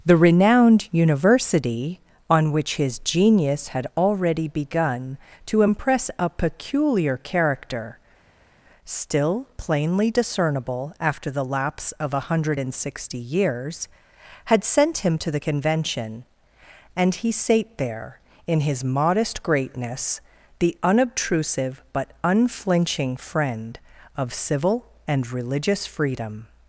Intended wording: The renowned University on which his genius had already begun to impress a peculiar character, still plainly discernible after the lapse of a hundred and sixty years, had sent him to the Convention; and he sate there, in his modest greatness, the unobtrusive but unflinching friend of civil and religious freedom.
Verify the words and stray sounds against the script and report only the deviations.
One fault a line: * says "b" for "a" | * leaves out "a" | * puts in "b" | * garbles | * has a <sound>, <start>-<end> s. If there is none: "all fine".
all fine